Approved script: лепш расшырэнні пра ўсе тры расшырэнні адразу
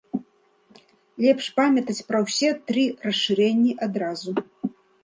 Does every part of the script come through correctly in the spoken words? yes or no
no